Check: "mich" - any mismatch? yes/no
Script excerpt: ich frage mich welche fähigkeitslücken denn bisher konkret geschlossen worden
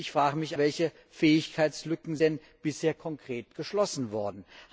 no